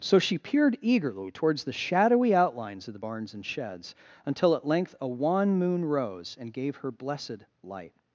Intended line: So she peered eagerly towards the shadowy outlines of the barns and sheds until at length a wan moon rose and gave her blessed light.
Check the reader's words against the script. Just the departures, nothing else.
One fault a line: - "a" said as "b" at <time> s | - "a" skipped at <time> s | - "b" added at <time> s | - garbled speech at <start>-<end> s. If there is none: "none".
none